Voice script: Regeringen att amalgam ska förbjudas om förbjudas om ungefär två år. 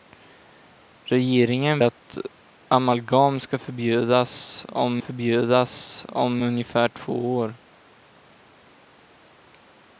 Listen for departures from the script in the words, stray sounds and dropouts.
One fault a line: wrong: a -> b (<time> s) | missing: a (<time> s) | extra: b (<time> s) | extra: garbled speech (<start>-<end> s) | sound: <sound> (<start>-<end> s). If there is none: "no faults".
no faults